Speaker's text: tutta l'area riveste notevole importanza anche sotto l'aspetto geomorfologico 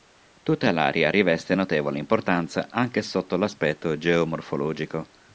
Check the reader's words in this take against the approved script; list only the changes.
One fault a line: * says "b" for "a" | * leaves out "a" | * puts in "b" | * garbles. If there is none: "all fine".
all fine